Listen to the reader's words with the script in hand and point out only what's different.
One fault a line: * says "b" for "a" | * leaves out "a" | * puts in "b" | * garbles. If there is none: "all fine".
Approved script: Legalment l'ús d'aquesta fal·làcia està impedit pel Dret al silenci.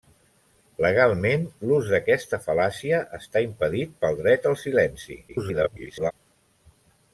* garbles